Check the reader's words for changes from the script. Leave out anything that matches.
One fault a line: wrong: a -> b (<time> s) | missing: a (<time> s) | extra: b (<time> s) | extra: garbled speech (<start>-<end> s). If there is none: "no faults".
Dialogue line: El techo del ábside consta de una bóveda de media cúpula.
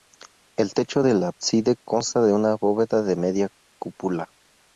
no faults